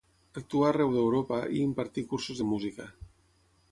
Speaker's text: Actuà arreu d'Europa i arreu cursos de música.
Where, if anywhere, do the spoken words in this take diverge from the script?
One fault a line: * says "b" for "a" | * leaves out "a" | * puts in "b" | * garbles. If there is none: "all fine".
* says "impartí" for "arreu"